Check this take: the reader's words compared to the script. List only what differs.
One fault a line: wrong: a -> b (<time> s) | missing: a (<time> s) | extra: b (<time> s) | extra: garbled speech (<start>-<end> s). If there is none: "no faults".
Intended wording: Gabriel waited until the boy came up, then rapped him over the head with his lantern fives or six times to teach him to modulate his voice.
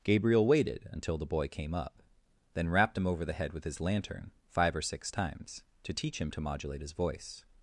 wrong: fives -> five (4.5 s)